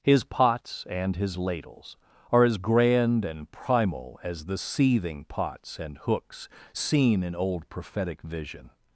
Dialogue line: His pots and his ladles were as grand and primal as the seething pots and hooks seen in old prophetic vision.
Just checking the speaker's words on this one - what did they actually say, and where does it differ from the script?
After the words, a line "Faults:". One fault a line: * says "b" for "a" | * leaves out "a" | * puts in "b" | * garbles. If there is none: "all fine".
His pots and his ladles are as grand and primal as the seething pots and hooks seen in old prophetic vision.
Faults:
* says "are" for "were"